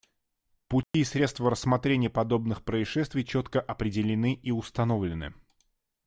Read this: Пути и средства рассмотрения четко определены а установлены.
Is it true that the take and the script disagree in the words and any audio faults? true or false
true